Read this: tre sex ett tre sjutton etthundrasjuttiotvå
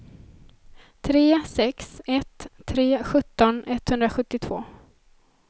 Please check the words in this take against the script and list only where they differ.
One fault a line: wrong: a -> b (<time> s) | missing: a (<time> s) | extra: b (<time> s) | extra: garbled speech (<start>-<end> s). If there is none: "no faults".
no faults